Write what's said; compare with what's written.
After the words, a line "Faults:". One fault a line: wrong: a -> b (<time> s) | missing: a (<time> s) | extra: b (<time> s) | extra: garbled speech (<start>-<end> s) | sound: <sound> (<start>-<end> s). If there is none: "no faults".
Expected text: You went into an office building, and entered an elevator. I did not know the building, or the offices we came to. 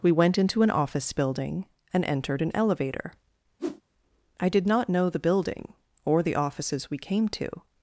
We went into an office building, and entered an elevator. I did not know the building, or the offices we came to.
Faults:
wrong: You -> We (0.0 s)
sound: whoosh (3.6-3.8 s)